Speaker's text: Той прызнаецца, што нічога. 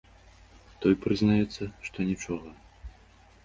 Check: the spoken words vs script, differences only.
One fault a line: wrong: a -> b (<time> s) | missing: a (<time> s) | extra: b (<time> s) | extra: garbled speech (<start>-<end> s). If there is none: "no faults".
no faults